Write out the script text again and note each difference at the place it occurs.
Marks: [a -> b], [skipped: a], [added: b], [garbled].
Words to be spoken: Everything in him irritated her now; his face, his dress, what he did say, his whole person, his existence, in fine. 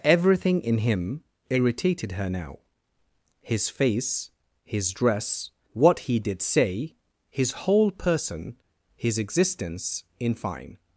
Everything in him irritated her now; his face, his dress, what he did say, his whole person, his existence, in fine.